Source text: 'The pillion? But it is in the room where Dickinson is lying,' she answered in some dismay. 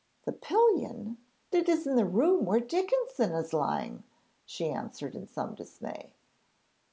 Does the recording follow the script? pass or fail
fail